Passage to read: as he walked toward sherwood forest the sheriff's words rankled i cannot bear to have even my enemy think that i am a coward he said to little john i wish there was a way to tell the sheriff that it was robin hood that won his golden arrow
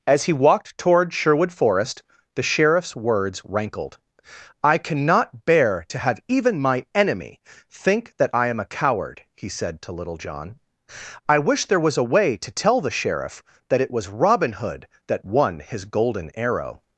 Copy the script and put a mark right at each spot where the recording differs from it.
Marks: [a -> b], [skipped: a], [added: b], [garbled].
as he walked toward sherwood forest the sheriff's words rankled i cannot bear to have even my enemy think that i am a coward he said to little john i wish there was a way to tell the sheriff that it was robin hood that won his golden arrow